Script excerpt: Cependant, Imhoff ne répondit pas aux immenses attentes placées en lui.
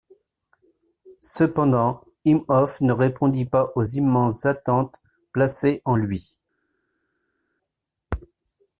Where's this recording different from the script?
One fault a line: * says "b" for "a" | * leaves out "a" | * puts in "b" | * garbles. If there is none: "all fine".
all fine